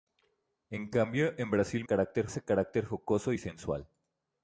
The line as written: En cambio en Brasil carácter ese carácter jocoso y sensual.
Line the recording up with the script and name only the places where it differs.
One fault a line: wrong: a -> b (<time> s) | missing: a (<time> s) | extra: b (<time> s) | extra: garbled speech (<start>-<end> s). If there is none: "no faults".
no faults